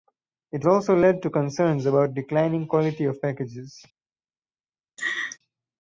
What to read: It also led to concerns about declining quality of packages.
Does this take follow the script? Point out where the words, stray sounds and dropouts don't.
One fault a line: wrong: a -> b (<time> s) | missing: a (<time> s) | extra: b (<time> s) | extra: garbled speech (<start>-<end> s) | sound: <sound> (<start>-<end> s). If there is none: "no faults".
sound: laugh (5.0-5.4 s)